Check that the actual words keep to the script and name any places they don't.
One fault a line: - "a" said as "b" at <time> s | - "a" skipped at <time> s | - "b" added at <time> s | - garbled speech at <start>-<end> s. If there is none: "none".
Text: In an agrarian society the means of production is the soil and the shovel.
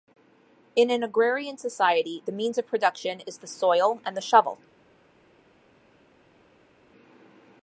none